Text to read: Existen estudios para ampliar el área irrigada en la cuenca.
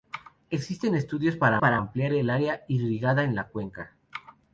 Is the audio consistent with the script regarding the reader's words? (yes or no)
no